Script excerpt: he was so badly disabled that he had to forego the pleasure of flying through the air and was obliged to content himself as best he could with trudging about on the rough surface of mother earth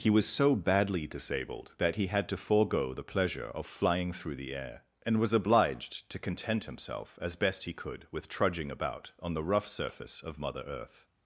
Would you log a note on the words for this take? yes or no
no